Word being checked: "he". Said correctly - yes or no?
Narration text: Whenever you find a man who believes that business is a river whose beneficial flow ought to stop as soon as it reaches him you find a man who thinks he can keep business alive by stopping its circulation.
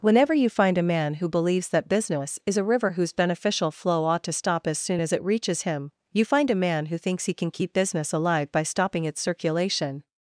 yes